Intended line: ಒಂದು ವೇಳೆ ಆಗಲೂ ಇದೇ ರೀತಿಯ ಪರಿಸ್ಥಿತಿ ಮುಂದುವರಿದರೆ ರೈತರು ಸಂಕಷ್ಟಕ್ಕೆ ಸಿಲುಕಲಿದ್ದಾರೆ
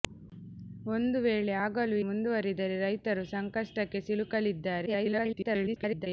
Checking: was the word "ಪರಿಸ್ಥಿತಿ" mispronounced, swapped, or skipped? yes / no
yes